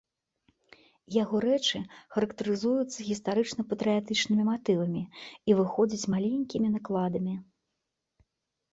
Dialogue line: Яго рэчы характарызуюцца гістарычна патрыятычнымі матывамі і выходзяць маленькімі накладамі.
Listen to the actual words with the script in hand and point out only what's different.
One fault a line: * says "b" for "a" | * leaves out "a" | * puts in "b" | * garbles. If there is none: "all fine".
all fine